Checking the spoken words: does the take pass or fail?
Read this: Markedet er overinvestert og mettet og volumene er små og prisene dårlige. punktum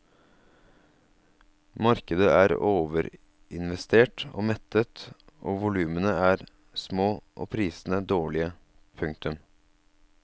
pass